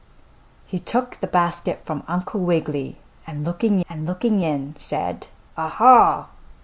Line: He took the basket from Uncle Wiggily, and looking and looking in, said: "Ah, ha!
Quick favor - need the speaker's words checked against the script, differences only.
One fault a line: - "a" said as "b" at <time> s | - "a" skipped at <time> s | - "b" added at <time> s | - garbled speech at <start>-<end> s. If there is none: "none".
none